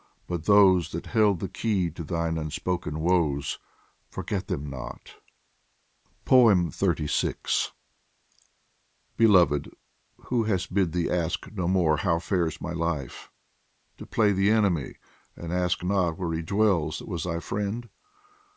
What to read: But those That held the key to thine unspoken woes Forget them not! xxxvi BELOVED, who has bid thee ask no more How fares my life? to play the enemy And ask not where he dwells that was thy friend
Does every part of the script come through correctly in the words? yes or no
yes